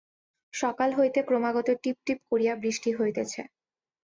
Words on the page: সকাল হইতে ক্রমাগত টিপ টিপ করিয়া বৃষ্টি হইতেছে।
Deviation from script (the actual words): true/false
false